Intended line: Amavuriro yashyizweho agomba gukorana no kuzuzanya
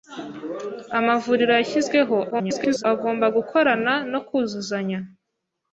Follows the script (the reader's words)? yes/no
no